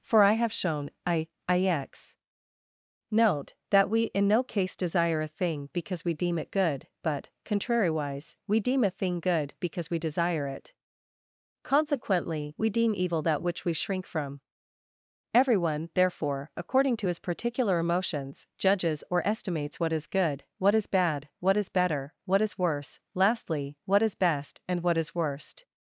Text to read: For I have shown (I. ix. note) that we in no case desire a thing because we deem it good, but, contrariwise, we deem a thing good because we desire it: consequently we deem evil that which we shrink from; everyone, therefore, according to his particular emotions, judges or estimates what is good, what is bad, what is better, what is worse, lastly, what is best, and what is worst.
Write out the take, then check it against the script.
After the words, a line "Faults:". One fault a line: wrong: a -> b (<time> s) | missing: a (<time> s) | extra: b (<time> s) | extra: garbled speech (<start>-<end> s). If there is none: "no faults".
For I have shown (I. ix. note) that we in no case desire a thing because we deem it good, but, contrariwise, we deem a thing good because we desire it: consequently we deem evil that which we shrink from; everyone, therefore, according to his particular emotions, judges or estimates what is good, what is bad, what is better, what is worse, lastly, what is best, and what is worst.
Faults:
no faults